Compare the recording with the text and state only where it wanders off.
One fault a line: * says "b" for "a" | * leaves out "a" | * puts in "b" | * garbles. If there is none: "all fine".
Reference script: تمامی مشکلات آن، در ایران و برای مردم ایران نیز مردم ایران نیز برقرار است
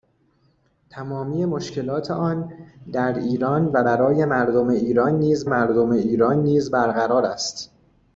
all fine